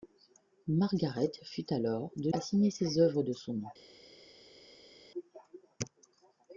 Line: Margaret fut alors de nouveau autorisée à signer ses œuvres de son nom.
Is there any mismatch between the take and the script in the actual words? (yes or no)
yes